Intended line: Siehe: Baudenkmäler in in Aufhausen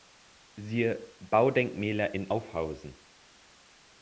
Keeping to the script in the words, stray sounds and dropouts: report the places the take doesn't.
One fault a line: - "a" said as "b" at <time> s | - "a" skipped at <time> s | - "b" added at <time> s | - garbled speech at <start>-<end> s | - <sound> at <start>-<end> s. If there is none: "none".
- "in" skipped at 2.3 s